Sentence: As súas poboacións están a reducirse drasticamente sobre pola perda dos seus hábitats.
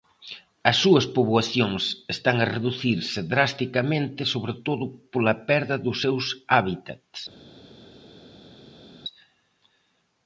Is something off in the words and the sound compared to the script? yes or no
yes